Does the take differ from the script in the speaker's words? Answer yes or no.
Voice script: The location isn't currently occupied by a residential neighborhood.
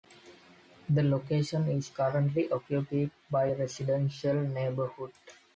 yes